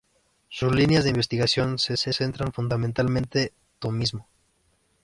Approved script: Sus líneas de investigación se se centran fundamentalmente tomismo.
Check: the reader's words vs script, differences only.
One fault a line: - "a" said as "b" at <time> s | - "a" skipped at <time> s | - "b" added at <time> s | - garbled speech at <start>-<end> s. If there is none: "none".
none